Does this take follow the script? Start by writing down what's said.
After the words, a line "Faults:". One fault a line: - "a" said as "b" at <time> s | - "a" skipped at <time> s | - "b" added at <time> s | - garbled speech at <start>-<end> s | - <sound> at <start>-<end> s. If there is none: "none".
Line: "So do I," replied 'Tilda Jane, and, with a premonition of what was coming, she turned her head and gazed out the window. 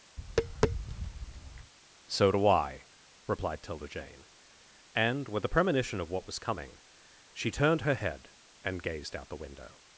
"So do I," replied 'Tilda Jane, and, with a premonition of what was coming, she turned her head and gazed out the window.
Faults:
- tap at 0.2-1.7 s